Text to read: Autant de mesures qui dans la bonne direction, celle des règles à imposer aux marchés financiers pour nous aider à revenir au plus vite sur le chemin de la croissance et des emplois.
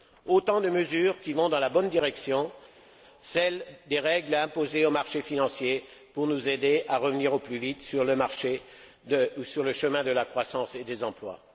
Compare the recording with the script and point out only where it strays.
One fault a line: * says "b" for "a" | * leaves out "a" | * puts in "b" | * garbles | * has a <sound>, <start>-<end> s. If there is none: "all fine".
* puts in "vont"